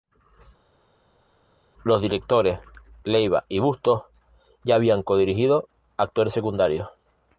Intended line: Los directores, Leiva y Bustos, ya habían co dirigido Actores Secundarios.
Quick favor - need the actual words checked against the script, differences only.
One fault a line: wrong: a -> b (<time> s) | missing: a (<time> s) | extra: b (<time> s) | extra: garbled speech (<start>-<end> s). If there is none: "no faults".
no faults